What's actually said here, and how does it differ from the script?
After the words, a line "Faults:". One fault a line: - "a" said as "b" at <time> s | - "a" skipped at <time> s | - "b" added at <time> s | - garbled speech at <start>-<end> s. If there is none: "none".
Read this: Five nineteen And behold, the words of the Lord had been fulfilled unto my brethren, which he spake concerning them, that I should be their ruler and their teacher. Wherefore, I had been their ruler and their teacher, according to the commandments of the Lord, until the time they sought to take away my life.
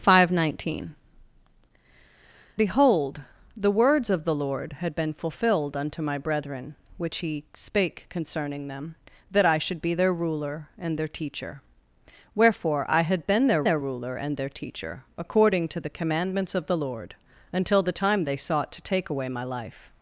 Five nineteen Behold, the words of the Lord had been fulfilled unto my brethren, which he spake concerning them, that I should be their ruler and their teacher. Wherefore, I had been their their ruler and their teacher, according to the commandments of the Lord, until the time they sought to take away my life.
Faults:
- "And" skipped at 0.9 s
- "their" added at 13.6 s